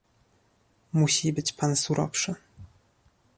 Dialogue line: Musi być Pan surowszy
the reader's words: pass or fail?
pass